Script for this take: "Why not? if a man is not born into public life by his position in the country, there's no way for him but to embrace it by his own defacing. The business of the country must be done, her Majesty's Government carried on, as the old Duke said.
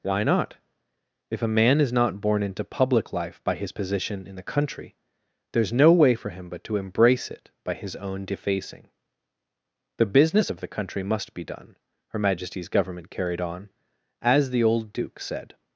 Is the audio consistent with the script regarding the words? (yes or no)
yes